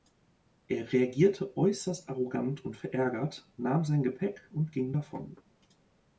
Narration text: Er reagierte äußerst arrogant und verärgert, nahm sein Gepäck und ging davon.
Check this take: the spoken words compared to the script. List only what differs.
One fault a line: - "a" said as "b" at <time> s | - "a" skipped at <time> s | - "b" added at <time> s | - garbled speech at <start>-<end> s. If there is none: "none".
none